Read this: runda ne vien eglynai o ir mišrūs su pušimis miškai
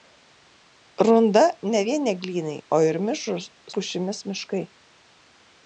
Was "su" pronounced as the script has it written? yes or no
no